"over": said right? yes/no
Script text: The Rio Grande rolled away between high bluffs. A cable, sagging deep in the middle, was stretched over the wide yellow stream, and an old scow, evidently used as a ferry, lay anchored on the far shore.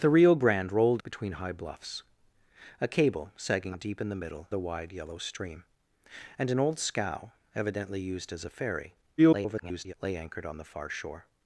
no